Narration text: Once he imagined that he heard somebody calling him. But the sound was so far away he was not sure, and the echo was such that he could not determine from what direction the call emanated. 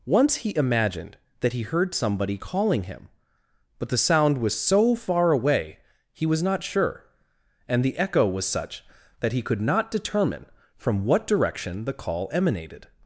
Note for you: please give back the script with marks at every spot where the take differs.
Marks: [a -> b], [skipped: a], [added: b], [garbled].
Once he imagined that he heard somebody calling him. But the sound was so far away he was not sure, and the echo was such that he could not determine from what direction the call emanated.